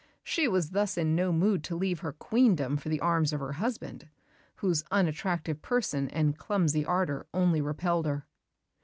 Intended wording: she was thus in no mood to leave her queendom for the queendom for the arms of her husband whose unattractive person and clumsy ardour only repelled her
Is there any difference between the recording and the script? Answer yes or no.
yes